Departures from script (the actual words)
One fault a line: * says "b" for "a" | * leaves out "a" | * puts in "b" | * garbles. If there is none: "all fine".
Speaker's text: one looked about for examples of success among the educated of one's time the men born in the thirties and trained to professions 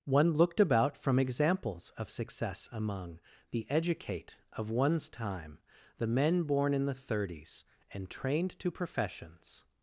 * says "from" for "for"
* says "educate" for "educated"